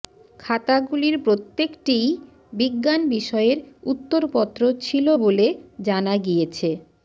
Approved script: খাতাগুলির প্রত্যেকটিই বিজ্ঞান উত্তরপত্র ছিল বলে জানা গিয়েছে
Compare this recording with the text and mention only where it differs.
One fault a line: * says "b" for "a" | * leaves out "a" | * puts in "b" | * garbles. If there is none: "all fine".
* puts in "বিষয়ের"